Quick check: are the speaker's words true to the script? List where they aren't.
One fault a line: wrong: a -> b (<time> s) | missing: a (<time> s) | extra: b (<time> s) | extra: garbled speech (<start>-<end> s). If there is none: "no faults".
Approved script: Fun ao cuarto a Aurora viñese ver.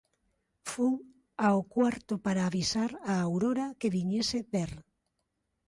extra: para avisar (2.2 s)
extra: que (3.8 s)